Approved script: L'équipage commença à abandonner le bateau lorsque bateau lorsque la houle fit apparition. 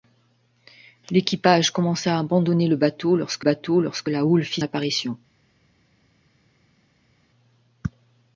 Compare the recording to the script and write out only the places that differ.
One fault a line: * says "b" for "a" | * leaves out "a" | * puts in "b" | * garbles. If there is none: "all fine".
all fine